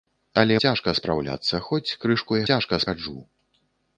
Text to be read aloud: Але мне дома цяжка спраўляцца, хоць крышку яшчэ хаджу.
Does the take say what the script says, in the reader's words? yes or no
no